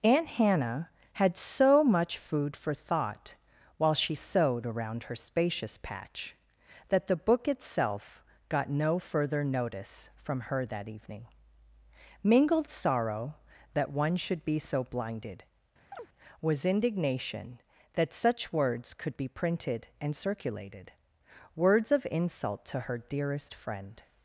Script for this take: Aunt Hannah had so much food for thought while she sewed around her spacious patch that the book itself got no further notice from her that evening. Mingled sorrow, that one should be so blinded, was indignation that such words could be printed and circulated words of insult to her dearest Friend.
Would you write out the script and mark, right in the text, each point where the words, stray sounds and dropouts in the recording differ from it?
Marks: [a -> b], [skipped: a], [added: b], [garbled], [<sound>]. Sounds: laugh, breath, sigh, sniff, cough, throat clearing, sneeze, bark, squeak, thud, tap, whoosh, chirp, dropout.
Aunt Hannah had so much food for thought while she sewed around her spacious patch that the book itself got no further notice from her that evening. Mingled sorrow, that one should be so blinded, [chirp] was indignation that such words could be printed and circulated words of insult to her dearest Friend.